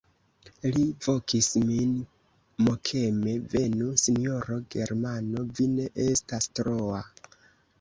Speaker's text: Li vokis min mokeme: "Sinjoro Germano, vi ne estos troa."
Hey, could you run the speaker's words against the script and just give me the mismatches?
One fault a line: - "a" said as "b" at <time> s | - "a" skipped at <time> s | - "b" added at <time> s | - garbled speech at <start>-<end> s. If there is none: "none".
- "Venu" added at 3.5 s
- "estos" said as "estas" at 6.1 s